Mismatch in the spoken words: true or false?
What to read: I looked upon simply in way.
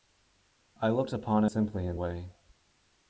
false